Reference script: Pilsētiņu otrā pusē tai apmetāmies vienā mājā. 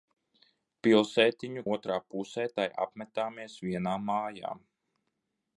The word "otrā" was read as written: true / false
true